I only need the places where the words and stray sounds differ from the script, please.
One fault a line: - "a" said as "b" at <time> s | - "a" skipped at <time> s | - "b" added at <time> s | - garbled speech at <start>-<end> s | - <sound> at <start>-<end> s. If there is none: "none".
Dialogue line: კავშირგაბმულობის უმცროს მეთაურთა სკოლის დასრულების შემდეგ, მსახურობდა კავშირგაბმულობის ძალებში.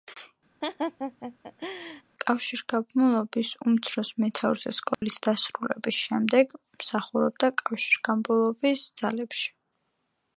- laugh at 0.6-2.0 s
- dropout at 4.9-5.0 s